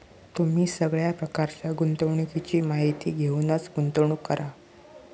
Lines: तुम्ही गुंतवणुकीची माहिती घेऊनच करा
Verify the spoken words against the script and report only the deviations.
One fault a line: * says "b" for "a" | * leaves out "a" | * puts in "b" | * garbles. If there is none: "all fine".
* puts in "सगळ्या प्रकारच्या"
* puts in "गुंतवणूक"